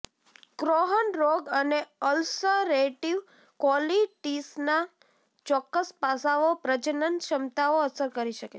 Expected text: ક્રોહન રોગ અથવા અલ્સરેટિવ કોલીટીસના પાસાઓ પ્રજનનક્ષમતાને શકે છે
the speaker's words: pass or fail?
fail